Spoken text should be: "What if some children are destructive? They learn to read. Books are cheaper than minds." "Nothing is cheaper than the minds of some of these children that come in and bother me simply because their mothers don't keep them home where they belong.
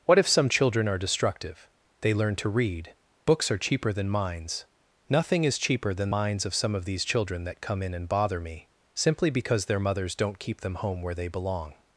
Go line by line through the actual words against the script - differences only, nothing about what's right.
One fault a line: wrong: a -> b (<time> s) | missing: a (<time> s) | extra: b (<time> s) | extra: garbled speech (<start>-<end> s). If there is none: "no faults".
missing: the (6.1 s)